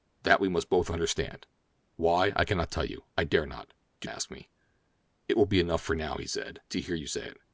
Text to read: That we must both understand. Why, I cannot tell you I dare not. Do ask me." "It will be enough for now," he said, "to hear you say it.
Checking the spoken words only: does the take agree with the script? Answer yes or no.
yes